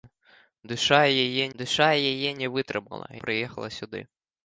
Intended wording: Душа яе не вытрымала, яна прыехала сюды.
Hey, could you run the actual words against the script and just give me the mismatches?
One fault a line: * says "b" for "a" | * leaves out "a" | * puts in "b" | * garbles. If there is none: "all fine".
* puts in "душа яе"
* leaves out "яна"